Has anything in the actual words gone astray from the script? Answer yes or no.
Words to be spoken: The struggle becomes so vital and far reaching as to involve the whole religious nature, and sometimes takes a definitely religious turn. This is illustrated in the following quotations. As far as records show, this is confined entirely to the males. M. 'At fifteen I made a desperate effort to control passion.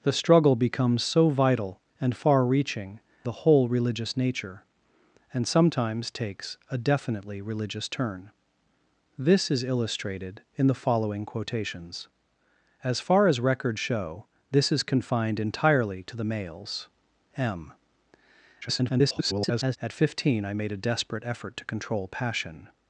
yes